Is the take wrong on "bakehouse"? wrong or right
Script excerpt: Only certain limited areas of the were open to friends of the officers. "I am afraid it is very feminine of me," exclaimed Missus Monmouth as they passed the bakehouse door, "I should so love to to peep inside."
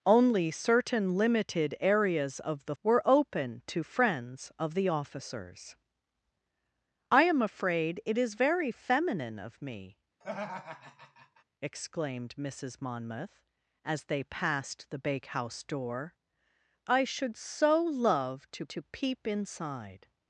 right